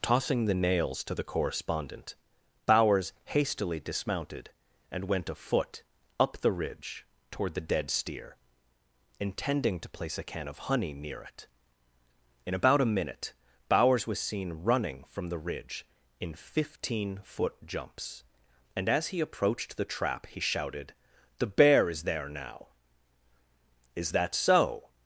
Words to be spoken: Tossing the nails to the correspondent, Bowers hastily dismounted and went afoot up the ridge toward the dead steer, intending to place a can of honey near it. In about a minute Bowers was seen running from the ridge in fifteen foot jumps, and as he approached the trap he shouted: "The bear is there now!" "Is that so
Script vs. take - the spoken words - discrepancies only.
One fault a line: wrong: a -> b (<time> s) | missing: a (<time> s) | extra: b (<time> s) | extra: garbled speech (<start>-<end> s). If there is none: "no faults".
no faults